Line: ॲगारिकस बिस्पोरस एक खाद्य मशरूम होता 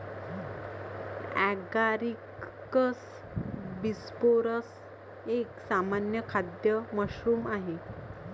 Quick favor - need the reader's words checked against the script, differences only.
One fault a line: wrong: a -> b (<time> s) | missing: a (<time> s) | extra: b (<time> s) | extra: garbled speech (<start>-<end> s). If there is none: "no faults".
extra: सामान्य (5.7 s)
wrong: होता -> आहे (7.5 s)